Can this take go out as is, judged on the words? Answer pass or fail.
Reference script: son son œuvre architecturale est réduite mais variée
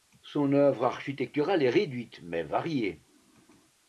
fail